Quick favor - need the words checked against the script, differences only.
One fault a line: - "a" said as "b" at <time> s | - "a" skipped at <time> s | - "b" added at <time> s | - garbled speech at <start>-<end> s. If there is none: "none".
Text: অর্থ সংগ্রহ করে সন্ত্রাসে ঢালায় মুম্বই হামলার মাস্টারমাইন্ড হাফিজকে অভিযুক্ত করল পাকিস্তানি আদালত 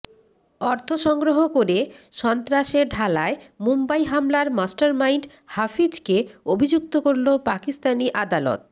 none